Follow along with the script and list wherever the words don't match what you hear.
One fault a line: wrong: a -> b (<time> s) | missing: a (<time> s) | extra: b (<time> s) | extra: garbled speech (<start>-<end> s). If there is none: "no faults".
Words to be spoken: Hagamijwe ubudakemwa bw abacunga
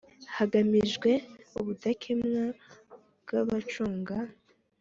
no faults